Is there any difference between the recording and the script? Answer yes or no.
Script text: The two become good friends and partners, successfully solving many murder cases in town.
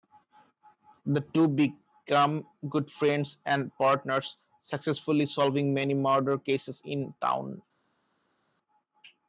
no